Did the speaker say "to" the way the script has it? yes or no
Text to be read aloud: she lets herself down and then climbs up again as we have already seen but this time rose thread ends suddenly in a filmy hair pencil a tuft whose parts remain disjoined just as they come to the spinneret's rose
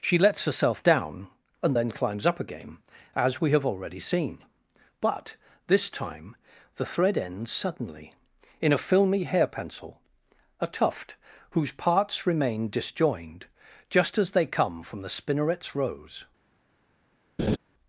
no